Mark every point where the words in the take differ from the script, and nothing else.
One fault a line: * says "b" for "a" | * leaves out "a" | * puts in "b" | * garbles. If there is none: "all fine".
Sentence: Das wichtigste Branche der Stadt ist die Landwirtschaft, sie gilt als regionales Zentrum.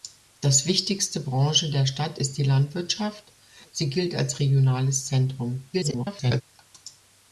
* garbles